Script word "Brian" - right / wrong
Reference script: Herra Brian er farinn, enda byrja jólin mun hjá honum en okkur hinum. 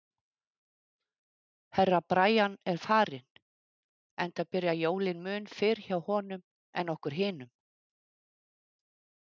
right